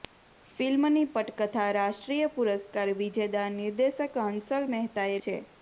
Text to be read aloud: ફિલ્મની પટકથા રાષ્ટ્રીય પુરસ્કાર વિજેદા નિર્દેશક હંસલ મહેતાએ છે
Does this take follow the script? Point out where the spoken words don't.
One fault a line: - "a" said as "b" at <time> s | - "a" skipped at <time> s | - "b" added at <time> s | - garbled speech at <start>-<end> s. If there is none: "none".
none